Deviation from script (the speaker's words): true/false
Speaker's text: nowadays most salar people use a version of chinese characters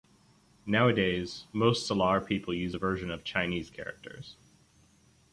false